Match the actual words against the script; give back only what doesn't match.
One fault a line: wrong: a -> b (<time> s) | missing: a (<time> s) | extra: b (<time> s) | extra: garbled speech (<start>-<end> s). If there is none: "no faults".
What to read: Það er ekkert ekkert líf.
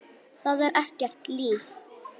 missing: ekkert (1.3 s)